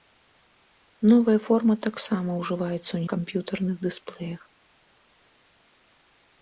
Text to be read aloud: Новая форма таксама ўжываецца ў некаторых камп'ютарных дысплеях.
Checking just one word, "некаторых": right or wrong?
wrong